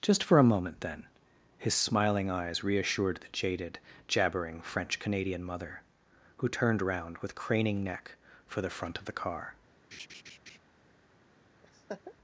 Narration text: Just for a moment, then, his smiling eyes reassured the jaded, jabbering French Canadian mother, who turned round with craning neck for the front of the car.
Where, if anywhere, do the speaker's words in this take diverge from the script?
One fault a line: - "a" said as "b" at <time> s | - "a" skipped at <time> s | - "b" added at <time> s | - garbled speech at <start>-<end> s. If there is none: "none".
none